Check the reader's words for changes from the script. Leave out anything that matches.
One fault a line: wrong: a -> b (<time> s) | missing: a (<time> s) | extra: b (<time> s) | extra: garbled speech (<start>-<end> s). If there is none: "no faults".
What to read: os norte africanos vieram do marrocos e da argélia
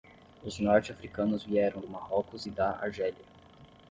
no faults